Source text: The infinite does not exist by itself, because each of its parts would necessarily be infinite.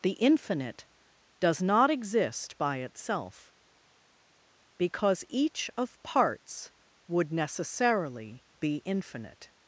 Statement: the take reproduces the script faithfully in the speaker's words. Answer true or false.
false